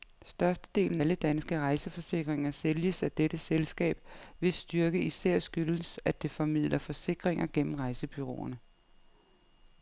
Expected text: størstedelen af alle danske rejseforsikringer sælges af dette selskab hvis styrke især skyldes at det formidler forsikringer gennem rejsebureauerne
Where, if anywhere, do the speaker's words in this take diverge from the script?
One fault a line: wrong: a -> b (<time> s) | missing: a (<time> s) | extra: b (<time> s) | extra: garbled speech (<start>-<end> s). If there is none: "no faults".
missing: af (1.0 s)